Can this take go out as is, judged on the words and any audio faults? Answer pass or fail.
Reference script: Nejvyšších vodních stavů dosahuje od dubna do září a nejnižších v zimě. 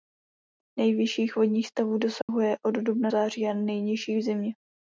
fail